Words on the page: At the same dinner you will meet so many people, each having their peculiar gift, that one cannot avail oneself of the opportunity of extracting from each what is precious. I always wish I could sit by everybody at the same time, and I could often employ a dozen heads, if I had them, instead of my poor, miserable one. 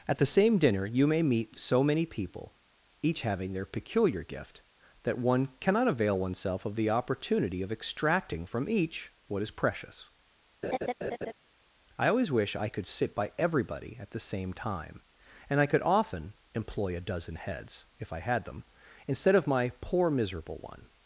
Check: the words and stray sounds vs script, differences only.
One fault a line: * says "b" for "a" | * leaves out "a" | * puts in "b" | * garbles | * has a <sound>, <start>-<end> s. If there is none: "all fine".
* says "may" for "will"
* has a laugh, 10.6-11.3 s